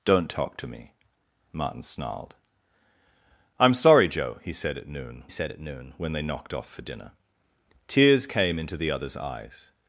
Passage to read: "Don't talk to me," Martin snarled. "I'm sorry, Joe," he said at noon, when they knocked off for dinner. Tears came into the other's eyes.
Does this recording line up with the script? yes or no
no